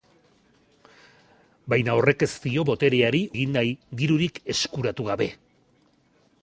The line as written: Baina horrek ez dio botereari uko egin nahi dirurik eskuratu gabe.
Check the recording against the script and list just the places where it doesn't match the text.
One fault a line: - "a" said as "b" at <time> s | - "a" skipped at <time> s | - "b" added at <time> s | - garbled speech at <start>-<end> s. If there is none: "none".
- "uko" skipped at 3.2 s